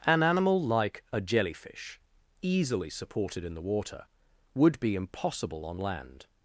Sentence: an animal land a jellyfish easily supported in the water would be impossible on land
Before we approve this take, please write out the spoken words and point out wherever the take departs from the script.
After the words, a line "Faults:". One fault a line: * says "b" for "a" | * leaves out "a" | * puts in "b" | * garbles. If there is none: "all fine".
an animal like a jellyfish easily supported in the water would be impossible on land
Faults:
* says "like" for "land"